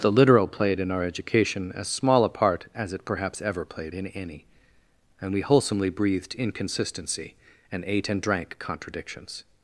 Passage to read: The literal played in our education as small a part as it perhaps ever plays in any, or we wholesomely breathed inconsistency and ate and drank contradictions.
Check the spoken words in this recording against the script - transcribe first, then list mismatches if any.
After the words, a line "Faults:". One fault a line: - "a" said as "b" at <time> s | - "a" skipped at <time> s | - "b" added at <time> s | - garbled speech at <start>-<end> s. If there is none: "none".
The literal played in our education as small a part as it perhaps ever played in any, and we wholesomely breathed inconsistency and ate and drank contradictions.
Faults:
- "plays" said as "played" at 3.6 s
- "or" said as "and" at 5.2 s